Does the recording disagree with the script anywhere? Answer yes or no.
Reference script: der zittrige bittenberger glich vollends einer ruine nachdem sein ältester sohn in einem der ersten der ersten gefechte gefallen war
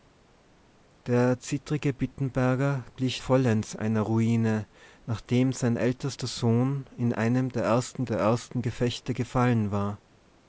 no